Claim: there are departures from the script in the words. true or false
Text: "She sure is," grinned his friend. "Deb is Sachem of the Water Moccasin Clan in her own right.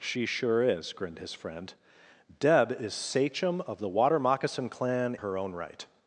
true